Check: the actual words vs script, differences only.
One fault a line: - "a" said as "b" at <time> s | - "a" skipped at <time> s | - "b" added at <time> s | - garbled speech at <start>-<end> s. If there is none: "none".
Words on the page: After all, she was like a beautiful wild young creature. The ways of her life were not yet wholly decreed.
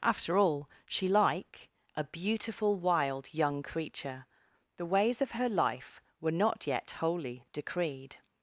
- "was" skipped at 1.1 s